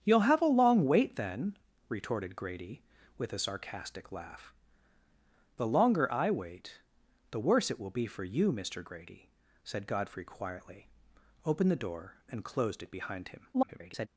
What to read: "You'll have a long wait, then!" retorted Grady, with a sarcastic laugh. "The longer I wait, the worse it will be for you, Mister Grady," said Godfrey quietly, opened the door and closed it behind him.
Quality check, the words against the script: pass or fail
fail